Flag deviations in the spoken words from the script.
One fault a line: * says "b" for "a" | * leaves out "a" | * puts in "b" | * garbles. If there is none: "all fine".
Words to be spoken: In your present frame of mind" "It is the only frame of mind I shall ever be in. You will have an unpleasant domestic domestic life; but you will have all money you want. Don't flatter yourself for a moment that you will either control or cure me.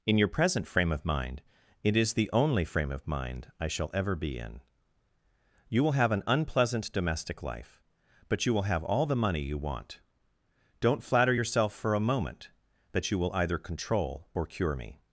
* leaves out "domestic"
* puts in "the"